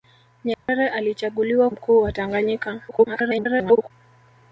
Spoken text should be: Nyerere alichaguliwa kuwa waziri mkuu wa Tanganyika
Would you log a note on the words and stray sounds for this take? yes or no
yes